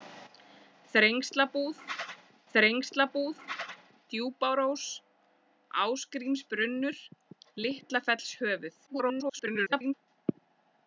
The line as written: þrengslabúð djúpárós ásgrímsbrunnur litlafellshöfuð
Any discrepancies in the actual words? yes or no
yes